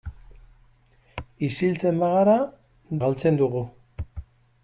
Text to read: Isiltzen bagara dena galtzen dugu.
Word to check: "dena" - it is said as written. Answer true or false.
false